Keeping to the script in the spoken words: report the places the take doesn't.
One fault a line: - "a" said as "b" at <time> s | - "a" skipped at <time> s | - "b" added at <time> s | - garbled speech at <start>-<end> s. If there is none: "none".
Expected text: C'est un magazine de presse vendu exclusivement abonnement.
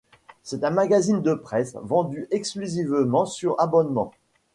- "sur" added at 3.3 s